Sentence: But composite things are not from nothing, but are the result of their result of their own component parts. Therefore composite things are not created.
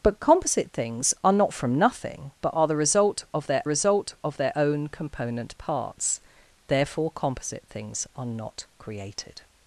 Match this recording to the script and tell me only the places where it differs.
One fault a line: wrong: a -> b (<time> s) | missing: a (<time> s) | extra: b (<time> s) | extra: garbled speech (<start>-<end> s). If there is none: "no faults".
no faults